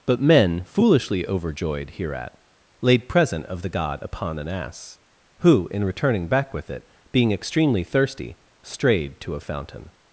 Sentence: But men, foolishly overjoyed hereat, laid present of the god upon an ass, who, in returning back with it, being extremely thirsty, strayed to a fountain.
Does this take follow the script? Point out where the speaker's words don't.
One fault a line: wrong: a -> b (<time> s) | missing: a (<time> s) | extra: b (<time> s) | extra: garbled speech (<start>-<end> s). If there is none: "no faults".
no faults